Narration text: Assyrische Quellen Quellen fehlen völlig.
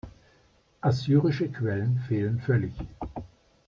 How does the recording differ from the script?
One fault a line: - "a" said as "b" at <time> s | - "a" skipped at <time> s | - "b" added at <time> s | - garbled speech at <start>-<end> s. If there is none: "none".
- "Quellen" skipped at 2.0 s